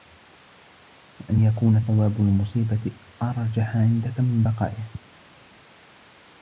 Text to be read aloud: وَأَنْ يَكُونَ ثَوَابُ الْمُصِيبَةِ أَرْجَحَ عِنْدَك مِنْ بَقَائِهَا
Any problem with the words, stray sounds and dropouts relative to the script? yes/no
no